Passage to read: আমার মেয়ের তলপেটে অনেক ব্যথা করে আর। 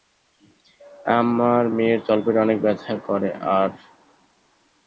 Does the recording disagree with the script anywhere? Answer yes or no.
no